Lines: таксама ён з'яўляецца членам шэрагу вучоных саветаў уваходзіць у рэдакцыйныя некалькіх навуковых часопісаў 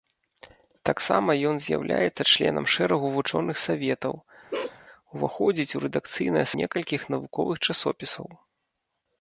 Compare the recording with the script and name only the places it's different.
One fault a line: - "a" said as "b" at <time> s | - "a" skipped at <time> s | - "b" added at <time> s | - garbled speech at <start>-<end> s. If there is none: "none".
none